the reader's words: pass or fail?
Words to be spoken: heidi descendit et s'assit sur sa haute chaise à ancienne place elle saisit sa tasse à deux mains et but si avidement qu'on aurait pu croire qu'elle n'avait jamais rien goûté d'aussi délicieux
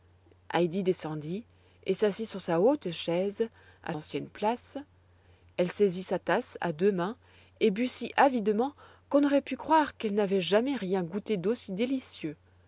pass